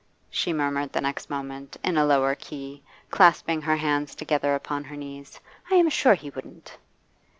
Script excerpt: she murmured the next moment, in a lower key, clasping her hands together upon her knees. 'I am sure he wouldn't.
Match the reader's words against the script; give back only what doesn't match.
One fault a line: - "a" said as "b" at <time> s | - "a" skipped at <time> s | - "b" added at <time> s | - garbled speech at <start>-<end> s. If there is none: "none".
none